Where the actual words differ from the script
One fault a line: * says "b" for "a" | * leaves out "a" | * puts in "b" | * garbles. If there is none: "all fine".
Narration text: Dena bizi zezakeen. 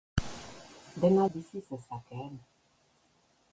all fine